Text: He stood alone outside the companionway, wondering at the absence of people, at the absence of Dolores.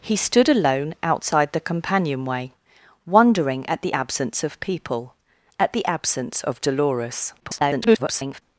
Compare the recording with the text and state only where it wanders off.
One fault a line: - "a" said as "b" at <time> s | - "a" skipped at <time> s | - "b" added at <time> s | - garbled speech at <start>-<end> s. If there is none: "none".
- garbled speech at 7.4-8.4 s